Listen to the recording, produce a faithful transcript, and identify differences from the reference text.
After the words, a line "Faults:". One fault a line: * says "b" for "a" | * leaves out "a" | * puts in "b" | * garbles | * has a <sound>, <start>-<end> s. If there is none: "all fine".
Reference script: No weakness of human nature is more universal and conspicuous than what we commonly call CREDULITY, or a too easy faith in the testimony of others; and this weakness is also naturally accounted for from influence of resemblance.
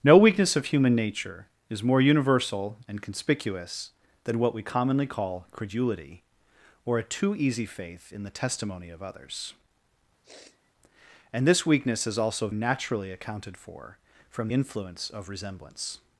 No weakness of human nature is more universal and conspicuous than what we commonly call CREDULITY, or a too easy faith in the testimony of others; and this weakness is also naturally accounted for from influence of resemblance.
Faults:
* has a sniff, 10.2-10.7 s